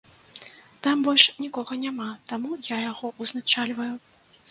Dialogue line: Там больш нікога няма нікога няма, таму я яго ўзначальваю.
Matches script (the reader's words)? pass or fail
fail